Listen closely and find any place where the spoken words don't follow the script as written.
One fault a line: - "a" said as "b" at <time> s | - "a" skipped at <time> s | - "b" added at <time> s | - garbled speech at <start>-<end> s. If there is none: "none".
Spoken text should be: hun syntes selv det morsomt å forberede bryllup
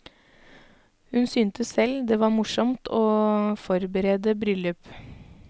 - "var" added at 2.2 s